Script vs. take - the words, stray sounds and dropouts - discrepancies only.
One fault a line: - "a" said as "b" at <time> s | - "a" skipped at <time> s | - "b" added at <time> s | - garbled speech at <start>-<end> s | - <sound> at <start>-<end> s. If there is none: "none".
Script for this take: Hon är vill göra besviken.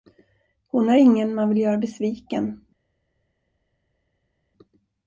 - "ingen man" added at 0.9 s